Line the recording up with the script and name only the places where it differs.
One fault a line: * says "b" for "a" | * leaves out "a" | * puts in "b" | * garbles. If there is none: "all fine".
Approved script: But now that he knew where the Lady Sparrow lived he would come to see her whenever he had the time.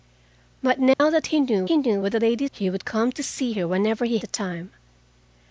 * puts in "he knew"
* leaves out "Sparrow lived"
* leaves out "had"